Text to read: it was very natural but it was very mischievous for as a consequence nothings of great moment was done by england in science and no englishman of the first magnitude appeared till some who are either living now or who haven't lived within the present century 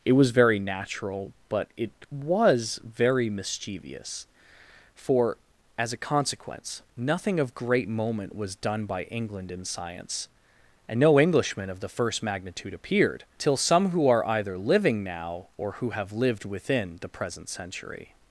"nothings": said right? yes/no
no